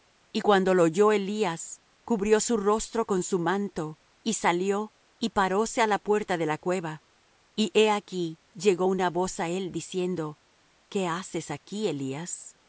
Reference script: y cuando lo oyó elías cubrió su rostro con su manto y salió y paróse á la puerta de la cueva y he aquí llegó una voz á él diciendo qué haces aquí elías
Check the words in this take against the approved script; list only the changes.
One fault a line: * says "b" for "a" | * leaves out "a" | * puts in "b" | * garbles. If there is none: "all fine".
all fine